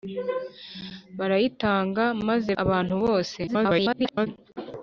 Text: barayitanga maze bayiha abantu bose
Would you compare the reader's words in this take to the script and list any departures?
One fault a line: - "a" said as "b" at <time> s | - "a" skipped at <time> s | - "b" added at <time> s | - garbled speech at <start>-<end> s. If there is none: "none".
- "bayiha" skipped at 2.5 s
- garbled speech at 3.5-4.3 s